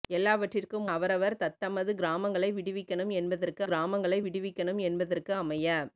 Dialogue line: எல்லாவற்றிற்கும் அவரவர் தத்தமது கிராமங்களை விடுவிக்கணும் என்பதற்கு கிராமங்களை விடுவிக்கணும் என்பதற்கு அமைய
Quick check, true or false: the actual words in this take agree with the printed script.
true